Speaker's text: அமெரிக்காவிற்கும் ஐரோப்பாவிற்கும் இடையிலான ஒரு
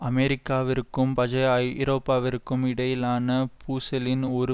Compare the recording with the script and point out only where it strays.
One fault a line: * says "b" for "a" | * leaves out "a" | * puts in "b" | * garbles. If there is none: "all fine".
* puts in "பஜைய"
* puts in "பூசலின்"